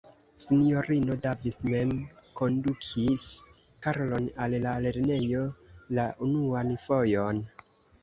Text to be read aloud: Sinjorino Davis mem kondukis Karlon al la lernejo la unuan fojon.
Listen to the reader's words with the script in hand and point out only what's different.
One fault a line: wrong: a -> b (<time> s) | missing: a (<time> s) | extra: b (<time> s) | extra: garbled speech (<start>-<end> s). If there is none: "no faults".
no faults